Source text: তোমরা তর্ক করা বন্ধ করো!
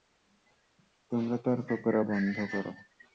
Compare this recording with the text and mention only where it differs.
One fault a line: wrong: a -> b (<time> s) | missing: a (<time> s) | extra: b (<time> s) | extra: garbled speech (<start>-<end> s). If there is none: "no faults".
no faults